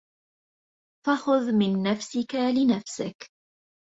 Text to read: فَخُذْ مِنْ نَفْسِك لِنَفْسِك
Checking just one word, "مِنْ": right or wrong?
right